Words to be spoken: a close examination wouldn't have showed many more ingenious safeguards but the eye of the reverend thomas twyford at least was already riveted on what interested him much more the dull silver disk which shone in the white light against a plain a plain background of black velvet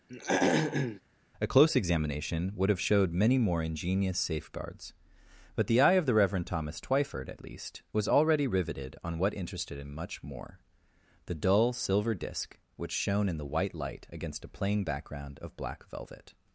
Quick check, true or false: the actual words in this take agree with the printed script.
false